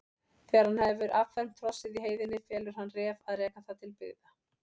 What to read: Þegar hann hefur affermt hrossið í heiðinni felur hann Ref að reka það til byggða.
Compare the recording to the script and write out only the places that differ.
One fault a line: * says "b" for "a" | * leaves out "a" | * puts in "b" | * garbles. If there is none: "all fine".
all fine